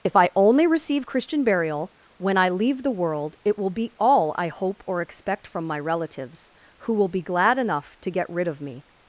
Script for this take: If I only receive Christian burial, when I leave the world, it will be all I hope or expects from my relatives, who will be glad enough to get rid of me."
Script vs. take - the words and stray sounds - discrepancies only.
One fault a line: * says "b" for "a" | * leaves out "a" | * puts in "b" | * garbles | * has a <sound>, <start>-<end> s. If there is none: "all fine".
* says "expect" for "expects"